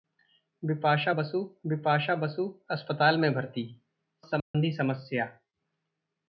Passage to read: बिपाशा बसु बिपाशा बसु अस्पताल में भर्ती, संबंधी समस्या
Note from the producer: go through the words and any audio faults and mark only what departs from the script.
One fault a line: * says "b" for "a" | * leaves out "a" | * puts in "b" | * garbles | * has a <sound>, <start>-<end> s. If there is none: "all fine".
* has a dropout, 4.4-4.5 s